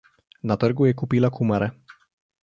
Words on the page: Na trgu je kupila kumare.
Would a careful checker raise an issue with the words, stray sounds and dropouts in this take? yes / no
no